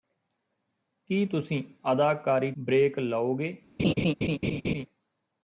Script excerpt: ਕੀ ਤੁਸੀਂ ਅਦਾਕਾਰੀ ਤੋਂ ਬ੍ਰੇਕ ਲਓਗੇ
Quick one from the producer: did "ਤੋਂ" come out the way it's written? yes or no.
no